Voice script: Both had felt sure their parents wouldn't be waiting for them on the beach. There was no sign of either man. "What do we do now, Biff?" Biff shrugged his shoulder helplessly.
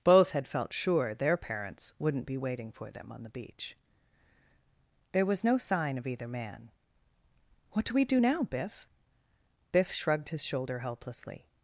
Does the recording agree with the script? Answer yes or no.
yes